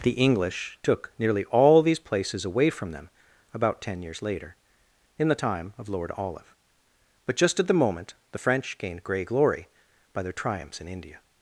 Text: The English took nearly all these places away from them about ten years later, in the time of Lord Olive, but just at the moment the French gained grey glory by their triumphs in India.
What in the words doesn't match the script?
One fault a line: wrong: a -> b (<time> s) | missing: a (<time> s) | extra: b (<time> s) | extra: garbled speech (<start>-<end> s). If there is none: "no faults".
no faults